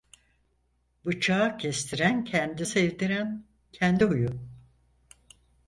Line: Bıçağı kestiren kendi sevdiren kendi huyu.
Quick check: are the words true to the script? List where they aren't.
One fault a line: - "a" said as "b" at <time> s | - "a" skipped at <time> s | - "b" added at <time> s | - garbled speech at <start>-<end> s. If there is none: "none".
none